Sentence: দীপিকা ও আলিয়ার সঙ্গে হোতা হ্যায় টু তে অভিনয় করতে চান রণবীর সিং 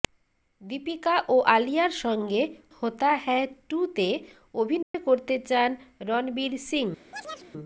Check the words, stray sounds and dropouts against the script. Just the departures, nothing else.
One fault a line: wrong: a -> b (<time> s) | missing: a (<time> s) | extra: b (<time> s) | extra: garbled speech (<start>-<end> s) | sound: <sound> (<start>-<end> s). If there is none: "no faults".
sound: dropout (4.8-4.9 s)
sound: chirp (7.1-7.5 s)